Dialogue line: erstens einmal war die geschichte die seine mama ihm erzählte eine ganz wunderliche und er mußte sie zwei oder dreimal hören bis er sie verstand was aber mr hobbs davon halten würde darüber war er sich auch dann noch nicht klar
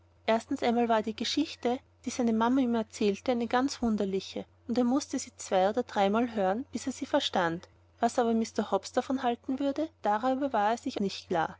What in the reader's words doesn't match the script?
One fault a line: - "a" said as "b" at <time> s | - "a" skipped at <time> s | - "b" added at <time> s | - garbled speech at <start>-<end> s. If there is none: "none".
- "auch dann noch" skipped at 11.0 s